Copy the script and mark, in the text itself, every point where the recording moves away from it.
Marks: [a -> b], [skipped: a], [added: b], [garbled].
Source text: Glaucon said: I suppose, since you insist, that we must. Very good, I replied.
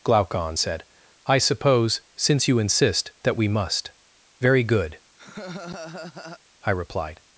Glaucon said: I suppose, since you insist, that we must. Very good, I replied.